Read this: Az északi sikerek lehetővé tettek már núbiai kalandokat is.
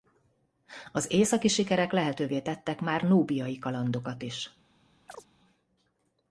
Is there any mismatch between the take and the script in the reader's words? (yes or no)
no